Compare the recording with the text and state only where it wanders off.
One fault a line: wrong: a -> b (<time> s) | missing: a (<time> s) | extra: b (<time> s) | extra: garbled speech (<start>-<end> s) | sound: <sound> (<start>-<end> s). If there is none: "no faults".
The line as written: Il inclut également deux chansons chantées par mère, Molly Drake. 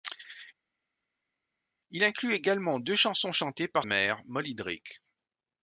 no faults